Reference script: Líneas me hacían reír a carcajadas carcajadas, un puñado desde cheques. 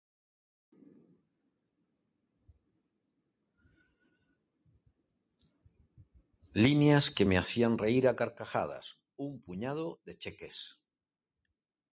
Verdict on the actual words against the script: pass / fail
fail